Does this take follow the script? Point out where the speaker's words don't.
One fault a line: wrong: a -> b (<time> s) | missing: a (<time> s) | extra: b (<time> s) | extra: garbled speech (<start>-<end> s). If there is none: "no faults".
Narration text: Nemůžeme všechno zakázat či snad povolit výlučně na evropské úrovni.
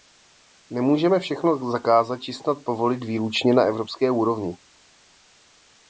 no faults